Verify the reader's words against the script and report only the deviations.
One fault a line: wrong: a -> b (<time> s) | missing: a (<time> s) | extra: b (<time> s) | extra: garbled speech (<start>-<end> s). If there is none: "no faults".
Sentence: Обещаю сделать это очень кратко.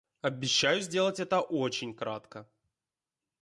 no faults